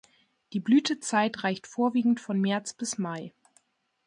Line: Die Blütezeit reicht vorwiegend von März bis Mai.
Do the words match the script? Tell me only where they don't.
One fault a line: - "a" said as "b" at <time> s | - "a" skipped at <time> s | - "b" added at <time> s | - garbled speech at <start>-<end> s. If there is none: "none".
none